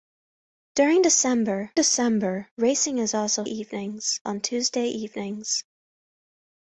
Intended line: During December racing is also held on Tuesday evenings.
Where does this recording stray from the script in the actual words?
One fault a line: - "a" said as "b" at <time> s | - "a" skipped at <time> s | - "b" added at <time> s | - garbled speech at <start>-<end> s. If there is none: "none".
- "December" added at 1.8 s
- "held" said as "evenings" at 3.4 s